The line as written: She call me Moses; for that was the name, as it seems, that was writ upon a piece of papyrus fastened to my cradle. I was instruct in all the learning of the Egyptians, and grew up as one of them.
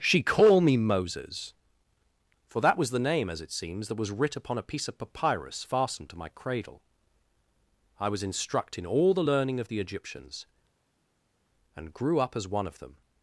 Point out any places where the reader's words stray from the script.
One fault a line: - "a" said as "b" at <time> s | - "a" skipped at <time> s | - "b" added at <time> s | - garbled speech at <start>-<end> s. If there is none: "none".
none